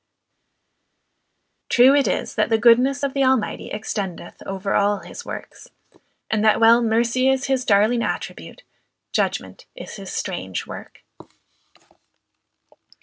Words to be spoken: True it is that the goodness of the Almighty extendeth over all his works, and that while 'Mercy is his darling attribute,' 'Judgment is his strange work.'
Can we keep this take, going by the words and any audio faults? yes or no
yes